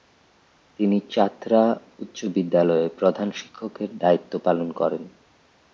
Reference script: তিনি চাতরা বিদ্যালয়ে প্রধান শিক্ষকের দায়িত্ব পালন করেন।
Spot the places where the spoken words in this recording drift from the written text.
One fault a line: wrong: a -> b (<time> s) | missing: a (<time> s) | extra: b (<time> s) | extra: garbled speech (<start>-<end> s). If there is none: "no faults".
extra: উচ্চ (2.0 s)